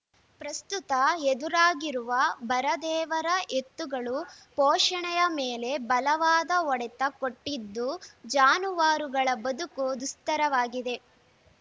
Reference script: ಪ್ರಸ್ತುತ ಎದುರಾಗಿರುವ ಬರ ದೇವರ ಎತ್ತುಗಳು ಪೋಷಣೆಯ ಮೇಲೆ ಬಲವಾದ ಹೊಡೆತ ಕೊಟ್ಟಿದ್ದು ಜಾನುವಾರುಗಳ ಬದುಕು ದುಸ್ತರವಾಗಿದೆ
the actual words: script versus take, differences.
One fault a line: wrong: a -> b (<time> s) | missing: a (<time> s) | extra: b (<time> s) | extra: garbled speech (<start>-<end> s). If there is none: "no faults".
no faults